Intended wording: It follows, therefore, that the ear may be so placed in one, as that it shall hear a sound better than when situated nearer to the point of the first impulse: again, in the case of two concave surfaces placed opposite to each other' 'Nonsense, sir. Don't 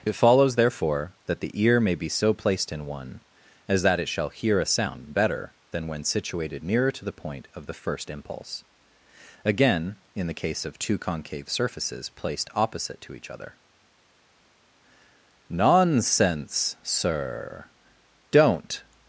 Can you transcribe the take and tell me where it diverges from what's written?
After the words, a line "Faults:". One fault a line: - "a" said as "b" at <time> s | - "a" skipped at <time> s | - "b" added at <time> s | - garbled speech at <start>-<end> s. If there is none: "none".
It follows, therefore, that the ear may be so placed in one, as that it shall hear a sound better than when situated nearer to the point of the first impulse: again, in the case of two concave surfaces placed opposite to each other' 'Nonsense, sir. Don't
Faults:
none